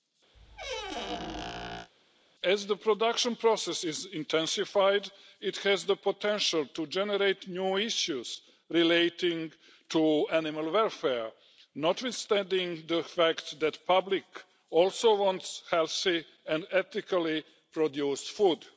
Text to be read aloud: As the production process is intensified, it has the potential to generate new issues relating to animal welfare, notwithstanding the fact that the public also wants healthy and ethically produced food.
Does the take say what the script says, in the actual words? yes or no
yes